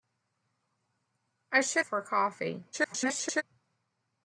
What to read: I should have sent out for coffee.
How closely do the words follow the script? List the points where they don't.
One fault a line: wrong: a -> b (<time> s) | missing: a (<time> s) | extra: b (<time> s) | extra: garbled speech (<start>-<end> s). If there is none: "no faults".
missing: have sent out (1.9 s)
extra: garbled speech (2.7-3.4 s)